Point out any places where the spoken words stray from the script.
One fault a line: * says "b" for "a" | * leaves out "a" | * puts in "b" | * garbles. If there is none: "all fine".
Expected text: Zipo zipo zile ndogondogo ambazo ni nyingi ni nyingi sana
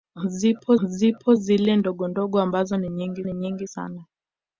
all fine